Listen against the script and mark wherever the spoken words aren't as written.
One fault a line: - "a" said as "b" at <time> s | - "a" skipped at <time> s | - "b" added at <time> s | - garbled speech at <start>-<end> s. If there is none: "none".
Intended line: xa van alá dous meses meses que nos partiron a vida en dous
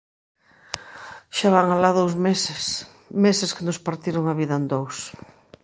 none